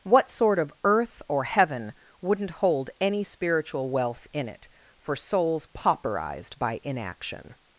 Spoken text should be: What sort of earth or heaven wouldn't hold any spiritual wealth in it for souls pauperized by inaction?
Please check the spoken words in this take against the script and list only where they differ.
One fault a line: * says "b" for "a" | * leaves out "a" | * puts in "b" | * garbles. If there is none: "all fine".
all fine